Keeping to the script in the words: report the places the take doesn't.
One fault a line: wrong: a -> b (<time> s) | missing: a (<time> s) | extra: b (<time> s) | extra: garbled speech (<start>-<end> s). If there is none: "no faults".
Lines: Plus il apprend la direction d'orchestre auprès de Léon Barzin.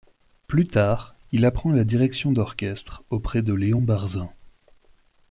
extra: tard (0.6 s)